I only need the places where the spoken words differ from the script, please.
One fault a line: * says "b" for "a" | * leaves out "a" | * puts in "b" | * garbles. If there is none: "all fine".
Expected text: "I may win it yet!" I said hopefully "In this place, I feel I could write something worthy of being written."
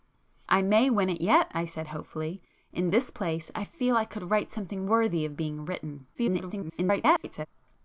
* garbles